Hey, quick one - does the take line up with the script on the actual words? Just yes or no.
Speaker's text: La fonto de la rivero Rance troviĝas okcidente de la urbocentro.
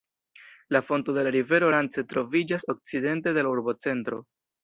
yes